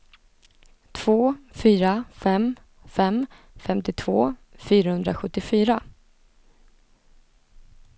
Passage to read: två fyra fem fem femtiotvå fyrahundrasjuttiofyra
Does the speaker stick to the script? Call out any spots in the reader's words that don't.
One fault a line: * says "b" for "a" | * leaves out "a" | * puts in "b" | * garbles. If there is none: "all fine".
all fine